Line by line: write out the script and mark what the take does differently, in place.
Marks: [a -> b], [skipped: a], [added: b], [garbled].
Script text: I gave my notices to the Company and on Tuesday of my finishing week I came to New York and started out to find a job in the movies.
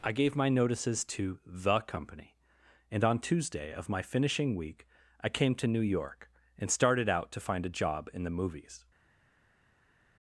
I gave my notices to the Company and on Tuesday of my finishing week I came to New York and started out to find a job in the movies.